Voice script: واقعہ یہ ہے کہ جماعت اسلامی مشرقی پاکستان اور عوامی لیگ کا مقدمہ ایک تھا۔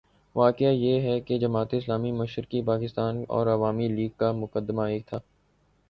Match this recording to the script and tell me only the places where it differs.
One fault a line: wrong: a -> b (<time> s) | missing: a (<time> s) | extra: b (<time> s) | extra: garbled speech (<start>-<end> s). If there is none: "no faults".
no faults